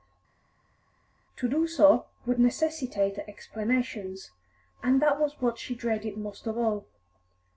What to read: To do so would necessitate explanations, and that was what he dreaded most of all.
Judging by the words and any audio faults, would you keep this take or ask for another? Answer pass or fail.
fail